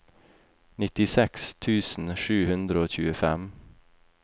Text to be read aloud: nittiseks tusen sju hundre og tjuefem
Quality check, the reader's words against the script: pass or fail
pass